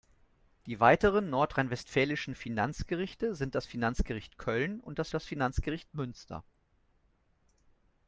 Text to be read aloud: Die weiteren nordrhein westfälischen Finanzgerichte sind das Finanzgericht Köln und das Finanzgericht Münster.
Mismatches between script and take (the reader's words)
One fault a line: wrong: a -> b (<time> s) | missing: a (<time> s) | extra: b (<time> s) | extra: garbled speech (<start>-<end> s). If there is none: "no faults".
extra: das (5.1 s)